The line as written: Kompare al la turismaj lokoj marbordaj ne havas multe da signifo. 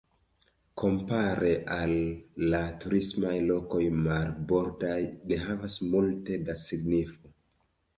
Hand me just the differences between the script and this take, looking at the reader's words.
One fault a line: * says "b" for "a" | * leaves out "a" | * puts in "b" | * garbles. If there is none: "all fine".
all fine